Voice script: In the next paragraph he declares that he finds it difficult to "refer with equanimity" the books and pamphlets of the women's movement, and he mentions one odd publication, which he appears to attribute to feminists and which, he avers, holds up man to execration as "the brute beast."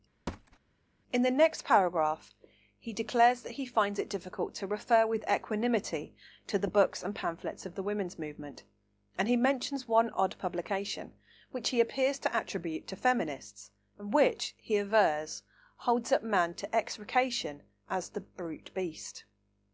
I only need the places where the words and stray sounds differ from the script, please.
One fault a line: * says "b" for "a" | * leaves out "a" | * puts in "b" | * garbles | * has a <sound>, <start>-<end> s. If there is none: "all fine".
* has a thud, 0.3-0.6 s
* puts in "to"